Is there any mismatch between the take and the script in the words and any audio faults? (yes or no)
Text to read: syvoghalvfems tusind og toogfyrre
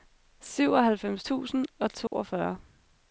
yes